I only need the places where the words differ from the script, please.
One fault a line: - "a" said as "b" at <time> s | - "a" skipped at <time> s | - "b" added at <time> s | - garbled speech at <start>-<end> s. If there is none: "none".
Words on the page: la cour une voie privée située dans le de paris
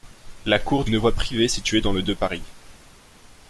none